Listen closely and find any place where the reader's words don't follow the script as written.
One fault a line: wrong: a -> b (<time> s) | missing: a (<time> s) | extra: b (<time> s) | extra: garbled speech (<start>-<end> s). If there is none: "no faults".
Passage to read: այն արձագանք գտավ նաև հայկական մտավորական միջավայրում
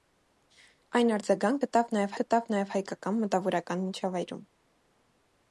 extra: գտավ նաև (2.2 s)